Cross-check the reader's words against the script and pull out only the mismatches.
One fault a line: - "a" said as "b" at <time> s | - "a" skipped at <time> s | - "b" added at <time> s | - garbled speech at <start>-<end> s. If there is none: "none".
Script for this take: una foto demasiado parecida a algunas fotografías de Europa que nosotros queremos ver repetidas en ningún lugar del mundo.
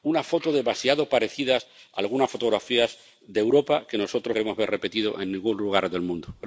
none